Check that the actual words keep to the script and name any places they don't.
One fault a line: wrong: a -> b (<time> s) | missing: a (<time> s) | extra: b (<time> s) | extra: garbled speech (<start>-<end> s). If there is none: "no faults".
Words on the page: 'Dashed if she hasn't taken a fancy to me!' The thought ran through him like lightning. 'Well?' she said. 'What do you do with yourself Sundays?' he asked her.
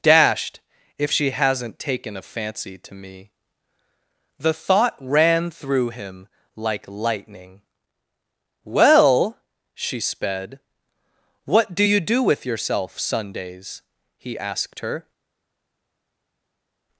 wrong: said -> sped (10.0 s)